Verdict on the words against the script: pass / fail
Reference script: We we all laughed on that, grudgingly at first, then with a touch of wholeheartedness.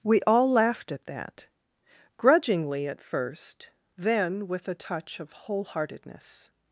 fail